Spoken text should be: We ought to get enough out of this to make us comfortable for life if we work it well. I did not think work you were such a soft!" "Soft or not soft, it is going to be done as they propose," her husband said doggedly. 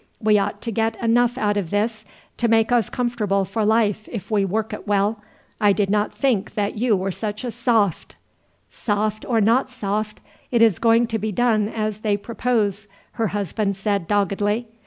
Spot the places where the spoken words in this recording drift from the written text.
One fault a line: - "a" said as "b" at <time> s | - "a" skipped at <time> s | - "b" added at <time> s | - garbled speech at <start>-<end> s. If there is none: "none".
- "work" said as "that" at 6.5 s